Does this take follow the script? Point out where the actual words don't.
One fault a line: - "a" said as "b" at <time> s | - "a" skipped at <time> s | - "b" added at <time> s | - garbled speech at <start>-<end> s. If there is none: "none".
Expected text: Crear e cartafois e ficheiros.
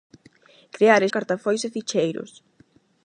none